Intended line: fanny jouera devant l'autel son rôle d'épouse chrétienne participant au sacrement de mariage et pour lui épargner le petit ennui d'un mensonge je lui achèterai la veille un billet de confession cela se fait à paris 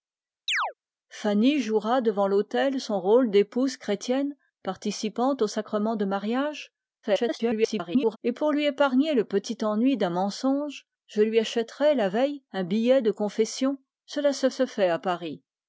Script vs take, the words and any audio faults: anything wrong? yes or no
yes